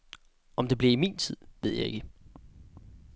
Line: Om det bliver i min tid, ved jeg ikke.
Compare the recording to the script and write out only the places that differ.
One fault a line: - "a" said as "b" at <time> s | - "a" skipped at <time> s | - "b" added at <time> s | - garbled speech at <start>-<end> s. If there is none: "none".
none